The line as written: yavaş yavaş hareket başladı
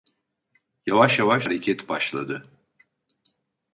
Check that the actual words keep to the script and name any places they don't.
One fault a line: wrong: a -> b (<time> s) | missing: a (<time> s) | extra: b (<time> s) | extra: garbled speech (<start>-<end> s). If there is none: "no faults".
no faults